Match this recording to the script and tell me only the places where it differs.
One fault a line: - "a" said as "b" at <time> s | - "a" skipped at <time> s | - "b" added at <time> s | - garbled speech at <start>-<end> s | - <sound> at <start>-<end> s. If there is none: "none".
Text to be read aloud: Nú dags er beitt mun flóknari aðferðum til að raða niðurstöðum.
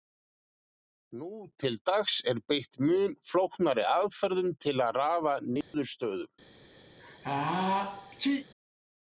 - "til" added at 1.6 s
- dropout at 5.6-5.7 s
- sneeze at 6.9-8.5 s